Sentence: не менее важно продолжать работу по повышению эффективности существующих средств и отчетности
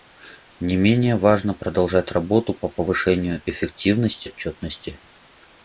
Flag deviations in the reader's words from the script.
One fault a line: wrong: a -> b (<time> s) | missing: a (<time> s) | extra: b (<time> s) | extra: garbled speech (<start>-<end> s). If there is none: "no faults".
missing: существующих средств и (4.3 s)